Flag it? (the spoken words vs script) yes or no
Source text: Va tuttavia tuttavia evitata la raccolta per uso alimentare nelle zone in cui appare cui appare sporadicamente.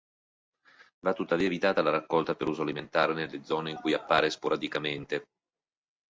yes